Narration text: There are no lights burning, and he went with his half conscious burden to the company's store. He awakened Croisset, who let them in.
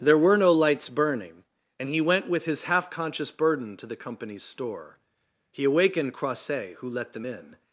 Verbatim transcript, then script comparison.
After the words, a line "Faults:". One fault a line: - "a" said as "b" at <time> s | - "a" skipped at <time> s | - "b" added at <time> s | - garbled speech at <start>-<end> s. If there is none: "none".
There were no lights burning, and he went with his half conscious burden to the company's store. He awakened Croisset, who let them in.
Faults:
- "are" said as "were" at 0.2 s